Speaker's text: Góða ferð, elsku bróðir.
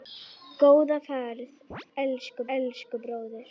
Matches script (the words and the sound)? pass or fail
fail